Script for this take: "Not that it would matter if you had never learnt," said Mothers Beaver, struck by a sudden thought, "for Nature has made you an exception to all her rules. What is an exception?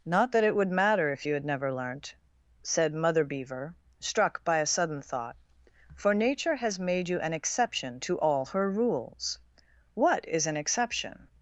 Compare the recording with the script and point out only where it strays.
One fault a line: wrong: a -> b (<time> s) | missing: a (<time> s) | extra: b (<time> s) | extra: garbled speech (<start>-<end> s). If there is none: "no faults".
wrong: Mothers -> Mother (2.9 s)